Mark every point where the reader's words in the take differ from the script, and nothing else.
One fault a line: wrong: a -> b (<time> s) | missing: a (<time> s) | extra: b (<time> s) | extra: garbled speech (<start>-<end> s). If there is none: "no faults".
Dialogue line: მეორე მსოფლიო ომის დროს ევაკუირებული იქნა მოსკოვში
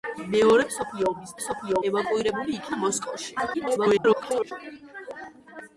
wrong: დროს -> მსოფლიო (1.4 s)
extra: garbled speech (3.5-4.5 s)